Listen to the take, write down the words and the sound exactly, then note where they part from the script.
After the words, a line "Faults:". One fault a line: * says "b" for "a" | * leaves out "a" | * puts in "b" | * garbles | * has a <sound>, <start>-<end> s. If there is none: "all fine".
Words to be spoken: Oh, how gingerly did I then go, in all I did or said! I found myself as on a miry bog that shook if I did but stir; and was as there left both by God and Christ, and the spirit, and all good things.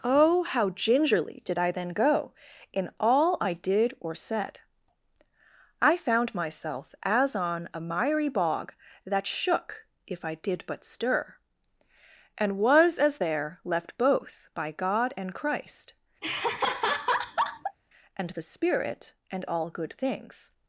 Oh, how gingerly did I then go, in all I did or said! I found myself as on a miry bog that shook if I did but stir; and was as there left both by God and Christ, and the spirit, and all good things.
Faults:
* has a laugh, 16.2-17.8 s